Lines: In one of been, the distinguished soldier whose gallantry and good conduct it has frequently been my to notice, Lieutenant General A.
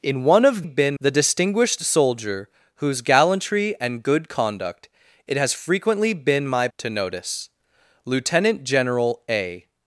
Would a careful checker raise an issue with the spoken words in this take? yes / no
no